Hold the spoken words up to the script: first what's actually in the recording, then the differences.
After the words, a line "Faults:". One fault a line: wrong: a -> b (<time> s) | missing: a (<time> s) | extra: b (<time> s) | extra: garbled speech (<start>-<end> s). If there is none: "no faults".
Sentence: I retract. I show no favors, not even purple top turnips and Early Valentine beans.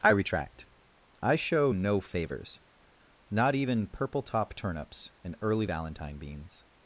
I retract. I show no favors, not even purple top turnips and Early Valentine beans.
Faults:
no faults